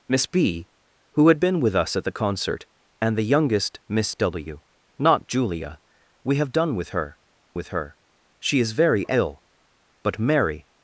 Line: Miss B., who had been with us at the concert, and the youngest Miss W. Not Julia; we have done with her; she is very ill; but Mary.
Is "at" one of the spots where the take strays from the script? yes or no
no